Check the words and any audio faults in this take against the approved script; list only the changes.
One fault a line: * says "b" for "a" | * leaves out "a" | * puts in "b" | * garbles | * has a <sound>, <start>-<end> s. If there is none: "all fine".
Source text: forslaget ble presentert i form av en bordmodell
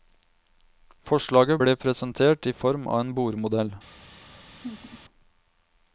* has a laugh, 4.5-5.0 s